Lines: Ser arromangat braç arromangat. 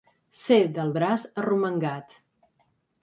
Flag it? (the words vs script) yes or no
yes